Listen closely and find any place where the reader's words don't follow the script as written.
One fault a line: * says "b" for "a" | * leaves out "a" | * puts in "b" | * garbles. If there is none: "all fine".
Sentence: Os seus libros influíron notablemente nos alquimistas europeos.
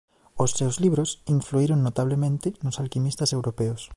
all fine